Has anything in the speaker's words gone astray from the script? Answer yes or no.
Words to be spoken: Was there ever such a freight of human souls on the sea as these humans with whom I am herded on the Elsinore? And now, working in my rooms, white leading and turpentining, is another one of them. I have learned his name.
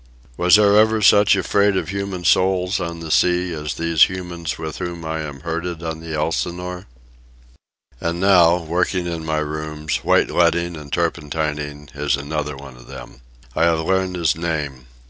no